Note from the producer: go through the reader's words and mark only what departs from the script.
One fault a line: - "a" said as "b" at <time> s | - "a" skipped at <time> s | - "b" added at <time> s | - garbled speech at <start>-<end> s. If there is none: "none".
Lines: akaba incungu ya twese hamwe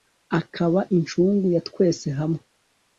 none